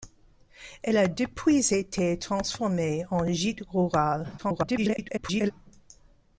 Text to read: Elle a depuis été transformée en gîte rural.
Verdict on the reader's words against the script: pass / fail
fail